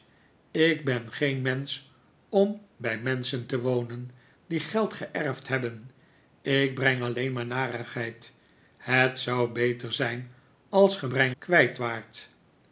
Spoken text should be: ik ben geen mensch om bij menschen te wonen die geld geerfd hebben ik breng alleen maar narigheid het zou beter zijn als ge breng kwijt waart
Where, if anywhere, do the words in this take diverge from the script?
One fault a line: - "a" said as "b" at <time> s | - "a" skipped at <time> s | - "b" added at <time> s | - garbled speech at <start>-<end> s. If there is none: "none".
none